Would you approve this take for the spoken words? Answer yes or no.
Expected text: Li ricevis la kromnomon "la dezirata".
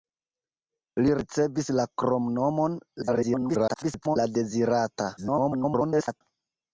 no